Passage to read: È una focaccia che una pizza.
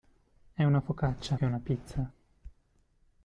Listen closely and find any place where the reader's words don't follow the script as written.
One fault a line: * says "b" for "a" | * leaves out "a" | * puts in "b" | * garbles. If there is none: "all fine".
all fine